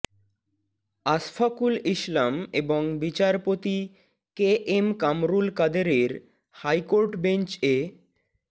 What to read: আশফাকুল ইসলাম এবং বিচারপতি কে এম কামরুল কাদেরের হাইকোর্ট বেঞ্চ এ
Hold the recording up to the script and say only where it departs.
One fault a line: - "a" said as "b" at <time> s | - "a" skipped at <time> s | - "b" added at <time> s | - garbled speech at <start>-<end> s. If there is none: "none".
none